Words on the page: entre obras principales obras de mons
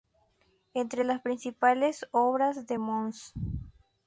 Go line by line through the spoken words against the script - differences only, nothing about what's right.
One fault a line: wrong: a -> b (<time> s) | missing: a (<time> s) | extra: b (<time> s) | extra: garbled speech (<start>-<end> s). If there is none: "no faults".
wrong: obras -> las (1.0 s)